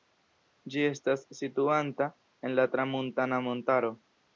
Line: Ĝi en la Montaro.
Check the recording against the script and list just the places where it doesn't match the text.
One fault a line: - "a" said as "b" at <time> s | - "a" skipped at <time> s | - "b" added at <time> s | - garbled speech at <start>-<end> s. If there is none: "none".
- "estas situanta" added at 0.9 s
- "Tramuntana" added at 2.8 s